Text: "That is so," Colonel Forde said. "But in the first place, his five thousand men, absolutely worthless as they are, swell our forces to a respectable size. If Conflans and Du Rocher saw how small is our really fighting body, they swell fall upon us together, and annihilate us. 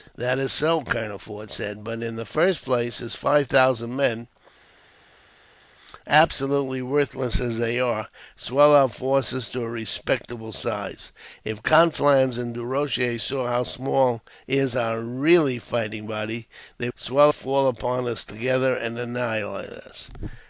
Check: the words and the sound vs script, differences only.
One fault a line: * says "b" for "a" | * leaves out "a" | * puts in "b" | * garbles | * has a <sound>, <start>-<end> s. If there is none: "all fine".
all fine